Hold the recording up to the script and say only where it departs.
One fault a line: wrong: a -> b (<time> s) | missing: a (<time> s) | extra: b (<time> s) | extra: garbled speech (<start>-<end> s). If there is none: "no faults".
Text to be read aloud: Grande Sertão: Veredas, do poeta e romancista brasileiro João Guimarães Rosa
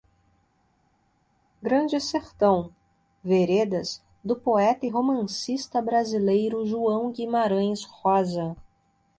no faults